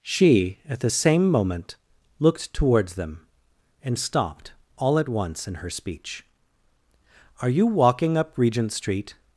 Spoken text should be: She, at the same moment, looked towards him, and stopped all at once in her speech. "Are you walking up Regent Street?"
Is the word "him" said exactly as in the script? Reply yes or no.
no